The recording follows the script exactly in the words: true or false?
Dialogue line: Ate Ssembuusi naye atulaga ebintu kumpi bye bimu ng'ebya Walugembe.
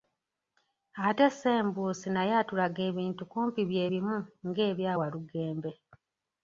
true